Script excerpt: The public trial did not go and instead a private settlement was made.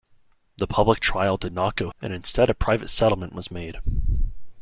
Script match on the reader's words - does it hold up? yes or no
yes